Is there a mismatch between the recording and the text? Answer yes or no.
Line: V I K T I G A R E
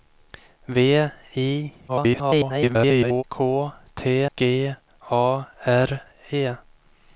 yes